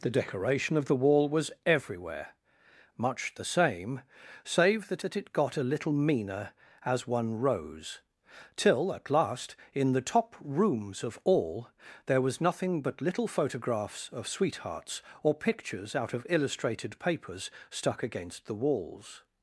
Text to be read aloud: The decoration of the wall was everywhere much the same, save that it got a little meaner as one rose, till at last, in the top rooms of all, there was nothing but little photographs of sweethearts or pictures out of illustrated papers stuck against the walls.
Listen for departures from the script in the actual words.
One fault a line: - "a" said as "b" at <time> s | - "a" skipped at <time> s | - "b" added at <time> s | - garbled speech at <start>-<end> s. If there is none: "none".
- "that" added at 5.0 s